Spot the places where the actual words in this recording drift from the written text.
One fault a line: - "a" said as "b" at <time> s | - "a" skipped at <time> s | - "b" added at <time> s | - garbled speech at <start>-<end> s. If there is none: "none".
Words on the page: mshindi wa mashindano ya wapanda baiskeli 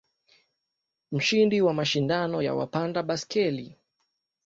none